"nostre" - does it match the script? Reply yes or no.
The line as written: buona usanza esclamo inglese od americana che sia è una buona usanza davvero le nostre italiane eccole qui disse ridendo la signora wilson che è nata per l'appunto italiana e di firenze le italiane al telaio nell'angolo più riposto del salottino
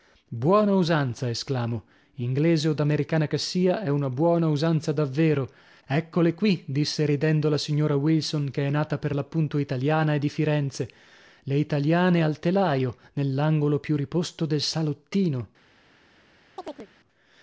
no